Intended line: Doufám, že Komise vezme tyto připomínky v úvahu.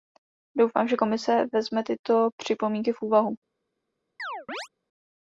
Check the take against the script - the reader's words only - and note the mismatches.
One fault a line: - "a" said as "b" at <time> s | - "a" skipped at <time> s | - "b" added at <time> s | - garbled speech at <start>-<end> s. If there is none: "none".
none